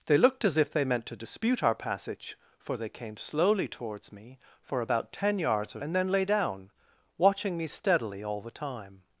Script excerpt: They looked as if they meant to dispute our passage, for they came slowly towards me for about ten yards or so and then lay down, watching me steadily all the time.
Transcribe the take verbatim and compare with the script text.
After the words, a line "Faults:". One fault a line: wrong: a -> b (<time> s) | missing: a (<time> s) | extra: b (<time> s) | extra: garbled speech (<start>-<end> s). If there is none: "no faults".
They looked as if they meant to dispute our passage, for they came slowly towards me for about ten yards or and then lay down, watching me steadily all the time.
Faults:
missing: so (5.8 s)